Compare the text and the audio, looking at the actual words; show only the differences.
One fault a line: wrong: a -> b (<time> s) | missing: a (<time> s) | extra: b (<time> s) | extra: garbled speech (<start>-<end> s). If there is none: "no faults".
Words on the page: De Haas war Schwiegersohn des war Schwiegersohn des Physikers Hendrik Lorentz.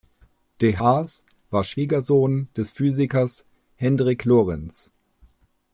missing: war Schwiegersohn des (2.7 s)